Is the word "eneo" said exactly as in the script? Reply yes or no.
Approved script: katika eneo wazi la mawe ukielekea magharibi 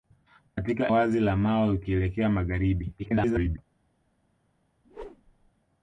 no